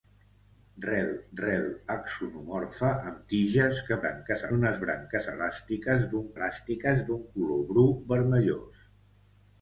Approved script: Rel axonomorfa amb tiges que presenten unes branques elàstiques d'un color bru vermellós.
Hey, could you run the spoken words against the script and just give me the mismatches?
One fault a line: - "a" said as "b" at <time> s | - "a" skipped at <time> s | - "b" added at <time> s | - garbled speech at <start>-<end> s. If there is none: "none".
- "rel" added at 1.4 s
- "presenten" said as "branques" at 4.0 s
- "elàstiques d'un" added at 6.3 s